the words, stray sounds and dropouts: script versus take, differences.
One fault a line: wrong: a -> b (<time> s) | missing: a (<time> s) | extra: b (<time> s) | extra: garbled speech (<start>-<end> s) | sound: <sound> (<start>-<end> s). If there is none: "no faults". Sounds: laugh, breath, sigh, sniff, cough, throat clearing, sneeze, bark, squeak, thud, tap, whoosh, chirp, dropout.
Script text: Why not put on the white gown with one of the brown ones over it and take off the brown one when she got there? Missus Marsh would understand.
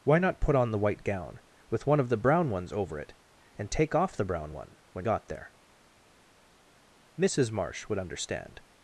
missing: she (5.0 s)